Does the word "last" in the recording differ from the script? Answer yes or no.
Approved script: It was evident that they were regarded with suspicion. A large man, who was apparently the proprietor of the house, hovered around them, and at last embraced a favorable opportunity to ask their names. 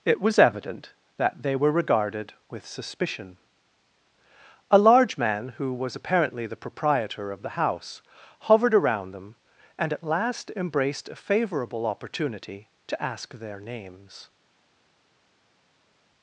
no